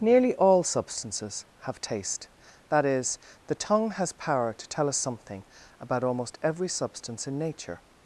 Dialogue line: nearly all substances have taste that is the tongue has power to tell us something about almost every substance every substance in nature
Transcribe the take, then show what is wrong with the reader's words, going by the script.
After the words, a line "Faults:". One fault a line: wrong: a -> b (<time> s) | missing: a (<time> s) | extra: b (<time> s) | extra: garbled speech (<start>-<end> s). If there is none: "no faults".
nearly all substances have taste that is the tongue has power to tell us something about almost every substance in nature
Faults:
missing: every substance (7.3 s)